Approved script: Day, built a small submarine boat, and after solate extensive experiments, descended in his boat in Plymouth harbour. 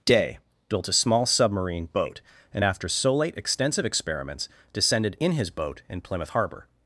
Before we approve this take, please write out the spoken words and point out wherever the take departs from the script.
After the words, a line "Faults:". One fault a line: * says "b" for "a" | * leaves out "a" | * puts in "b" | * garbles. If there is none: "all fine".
Day, built a small submarine boat, and after solate extensive experiments, descended in his boat in Plymouth harbour.
Faults:
all fine